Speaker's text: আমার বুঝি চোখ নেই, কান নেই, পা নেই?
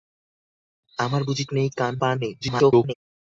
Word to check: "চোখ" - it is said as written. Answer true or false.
false